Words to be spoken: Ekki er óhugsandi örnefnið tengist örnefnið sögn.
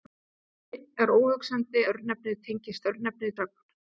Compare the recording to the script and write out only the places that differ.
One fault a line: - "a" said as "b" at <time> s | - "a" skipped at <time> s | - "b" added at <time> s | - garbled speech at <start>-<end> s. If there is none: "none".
none